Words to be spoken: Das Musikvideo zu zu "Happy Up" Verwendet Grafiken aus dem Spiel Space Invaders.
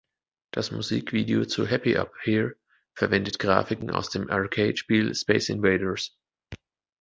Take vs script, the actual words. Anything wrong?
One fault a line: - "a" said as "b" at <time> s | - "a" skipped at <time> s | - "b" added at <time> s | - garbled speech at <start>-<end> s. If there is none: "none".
- "zu" skipped at 1.7 s
- "Here" added at 2.2 s
- "Arcade" added at 4.3 s